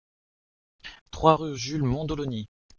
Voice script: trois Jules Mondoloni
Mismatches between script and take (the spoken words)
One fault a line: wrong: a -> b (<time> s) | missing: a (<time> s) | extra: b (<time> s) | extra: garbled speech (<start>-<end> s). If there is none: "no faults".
extra: rue (1.3 s)